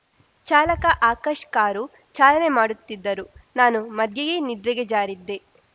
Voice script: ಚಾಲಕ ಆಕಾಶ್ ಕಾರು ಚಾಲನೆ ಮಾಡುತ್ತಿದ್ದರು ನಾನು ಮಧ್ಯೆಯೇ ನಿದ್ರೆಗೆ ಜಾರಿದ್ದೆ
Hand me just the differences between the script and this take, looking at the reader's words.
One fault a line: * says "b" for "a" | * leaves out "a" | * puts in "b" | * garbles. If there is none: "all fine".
all fine